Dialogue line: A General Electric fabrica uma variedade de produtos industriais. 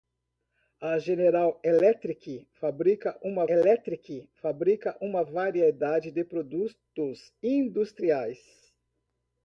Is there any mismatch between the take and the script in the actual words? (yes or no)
yes